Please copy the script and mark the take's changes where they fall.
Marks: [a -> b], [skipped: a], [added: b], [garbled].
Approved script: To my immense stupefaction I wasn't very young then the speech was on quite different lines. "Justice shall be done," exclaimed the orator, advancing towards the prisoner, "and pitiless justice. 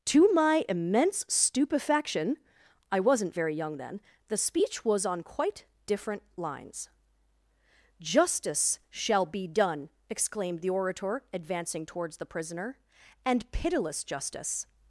To my immense stupefaction I wasn't very young then the speech was on quite different lines. "Justice shall be done," exclaimed the orator, advancing towards the prisoner, "and pitiless justice.